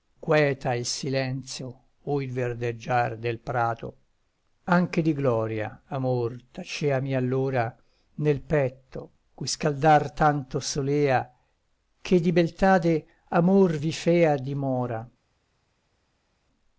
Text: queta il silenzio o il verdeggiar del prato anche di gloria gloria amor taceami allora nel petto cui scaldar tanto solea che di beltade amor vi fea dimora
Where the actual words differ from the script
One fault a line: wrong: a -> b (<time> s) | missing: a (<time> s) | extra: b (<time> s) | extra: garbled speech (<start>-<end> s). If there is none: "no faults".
missing: gloria (5.8 s)